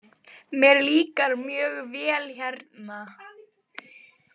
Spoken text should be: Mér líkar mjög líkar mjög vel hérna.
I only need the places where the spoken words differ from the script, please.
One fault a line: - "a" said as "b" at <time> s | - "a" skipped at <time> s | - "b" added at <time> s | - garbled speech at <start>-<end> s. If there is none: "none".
- "líkar mjög" skipped at 1.7 s